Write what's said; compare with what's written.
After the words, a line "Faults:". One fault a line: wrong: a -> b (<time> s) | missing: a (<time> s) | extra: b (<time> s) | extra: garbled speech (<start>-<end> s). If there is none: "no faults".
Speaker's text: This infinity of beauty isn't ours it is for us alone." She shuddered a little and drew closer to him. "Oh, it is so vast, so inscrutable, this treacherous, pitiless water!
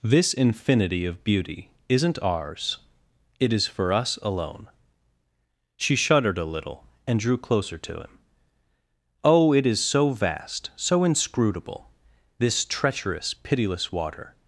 This infinity of beauty isn't ours it is for us alone." She shuddered a little and drew closer to him. "Oh, it is so vast, so inscrutable, this treacherous, pitiless water!
Faults:
no faults